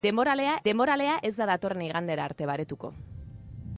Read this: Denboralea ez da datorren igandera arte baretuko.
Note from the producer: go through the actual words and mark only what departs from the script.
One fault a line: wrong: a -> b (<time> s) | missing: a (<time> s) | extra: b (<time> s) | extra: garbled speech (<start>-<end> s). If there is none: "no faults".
extra: denboralea (0.6 s)